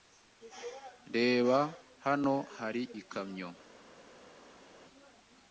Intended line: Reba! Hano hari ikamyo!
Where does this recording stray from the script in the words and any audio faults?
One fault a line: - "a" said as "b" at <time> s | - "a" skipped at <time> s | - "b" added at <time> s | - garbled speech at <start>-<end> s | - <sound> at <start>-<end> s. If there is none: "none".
none